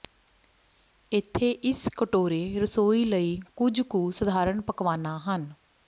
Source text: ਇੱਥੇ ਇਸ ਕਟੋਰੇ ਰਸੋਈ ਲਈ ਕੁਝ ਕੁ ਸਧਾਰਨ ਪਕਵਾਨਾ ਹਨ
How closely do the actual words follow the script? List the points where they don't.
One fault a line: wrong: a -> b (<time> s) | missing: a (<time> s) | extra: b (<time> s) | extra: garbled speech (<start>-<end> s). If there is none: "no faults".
no faults